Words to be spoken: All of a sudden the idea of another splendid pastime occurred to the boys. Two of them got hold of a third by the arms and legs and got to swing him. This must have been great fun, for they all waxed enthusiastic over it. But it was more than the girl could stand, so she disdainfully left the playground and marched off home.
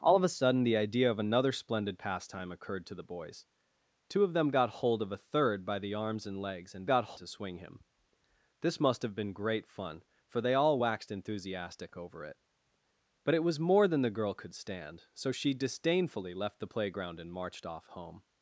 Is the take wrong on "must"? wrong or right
right